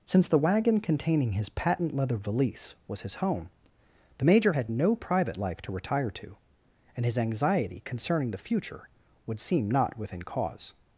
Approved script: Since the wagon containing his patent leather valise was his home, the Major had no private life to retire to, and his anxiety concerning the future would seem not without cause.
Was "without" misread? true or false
true